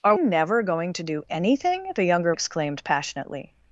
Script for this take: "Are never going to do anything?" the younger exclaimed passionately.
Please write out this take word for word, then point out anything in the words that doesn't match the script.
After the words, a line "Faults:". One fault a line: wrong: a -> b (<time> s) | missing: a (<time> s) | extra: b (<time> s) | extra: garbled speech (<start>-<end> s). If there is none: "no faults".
"Are never going to do anything?" the younger exclaimed passionately.
Faults:
no faults